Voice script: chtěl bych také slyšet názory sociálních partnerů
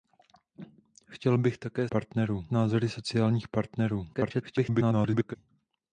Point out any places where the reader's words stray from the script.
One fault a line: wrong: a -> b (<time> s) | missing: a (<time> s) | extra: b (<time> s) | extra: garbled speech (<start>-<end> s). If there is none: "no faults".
wrong: slyšet -> partnerů (1.9 s)
extra: garbled speech (4.1-5.4 s)